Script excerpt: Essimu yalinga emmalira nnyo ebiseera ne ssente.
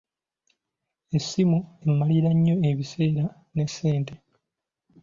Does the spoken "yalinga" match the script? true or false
false